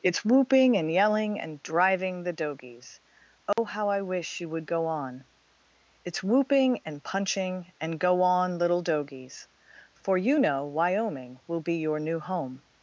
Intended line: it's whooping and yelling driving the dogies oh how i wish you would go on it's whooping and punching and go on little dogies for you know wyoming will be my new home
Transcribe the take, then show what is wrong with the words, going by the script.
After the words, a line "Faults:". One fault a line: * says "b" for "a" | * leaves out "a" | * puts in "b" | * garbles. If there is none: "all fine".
it's whooping and yelling and driving the dogies oh how i wish you would go on it's whooping and punching and go on little dogies for you know wyoming will be your new home
Faults:
* puts in "and"
* says "your" for "my"